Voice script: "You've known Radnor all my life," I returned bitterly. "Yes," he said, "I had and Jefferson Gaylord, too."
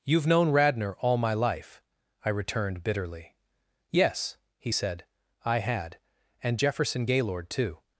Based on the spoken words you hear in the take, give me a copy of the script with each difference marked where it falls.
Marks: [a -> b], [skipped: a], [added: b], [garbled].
"You've known Radnor all my life," I returned bitterly. "Yes," he said, "I had and Jefferson Gaylord, too."